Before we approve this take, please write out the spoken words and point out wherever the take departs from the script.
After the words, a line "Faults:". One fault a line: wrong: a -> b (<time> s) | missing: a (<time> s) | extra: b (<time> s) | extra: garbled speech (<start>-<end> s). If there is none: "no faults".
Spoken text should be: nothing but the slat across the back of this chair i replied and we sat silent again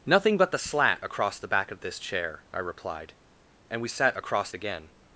nothing but the slat across the back of this chair i replied and we sat across again
Faults:
wrong: silent -> across (4.1 s)